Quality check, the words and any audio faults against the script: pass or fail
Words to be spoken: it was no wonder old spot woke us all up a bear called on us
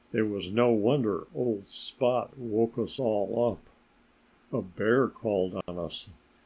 fail